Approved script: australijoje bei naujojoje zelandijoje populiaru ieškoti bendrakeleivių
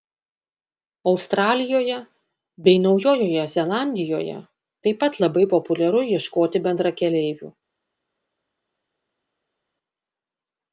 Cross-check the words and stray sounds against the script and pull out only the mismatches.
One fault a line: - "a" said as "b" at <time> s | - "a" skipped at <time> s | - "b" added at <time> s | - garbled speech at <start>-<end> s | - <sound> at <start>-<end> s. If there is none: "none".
- "taip pat labai" added at 4.9 s